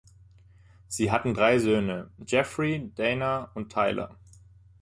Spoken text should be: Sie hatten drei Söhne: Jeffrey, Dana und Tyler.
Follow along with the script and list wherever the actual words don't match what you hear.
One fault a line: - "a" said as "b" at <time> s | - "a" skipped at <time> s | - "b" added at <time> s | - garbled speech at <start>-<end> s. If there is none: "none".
none